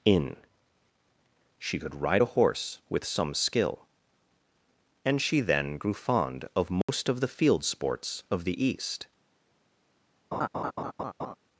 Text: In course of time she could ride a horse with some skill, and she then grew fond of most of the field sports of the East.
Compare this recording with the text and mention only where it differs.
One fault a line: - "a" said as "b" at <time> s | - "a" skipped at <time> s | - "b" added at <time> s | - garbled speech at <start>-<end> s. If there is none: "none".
- "course of time" skipped at 0.4 s